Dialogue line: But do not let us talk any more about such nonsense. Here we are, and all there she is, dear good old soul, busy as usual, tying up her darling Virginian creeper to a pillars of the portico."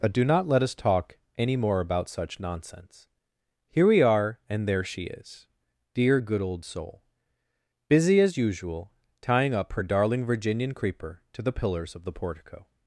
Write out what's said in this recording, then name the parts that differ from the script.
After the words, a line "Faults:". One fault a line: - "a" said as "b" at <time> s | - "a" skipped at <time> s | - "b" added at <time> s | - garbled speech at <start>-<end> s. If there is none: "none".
But do not let us talk any more about such nonsense. Here we are, and there she is, dear good old soul, busy as usual, tying up her darling Virginian creeper to the pillars of the portico."
Faults:
- "all" skipped at 4.7 s
- "a" said as "the" at 11.4 s